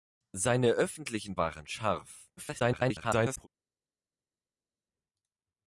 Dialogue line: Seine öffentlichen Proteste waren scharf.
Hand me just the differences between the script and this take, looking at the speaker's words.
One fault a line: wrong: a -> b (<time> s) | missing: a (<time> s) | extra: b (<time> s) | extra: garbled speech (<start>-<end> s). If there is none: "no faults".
missing: Proteste (1.4 s)
extra: garbled speech (2.4-3.5 s)